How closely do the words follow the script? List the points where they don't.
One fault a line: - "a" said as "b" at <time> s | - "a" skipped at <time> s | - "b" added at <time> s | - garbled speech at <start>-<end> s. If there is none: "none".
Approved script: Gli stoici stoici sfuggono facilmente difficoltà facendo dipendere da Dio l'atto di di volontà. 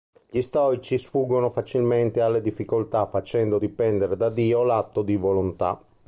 - "stoici" skipped at 1.0 s
- "alle" added at 2.2 s
- "di" skipped at 5.1 s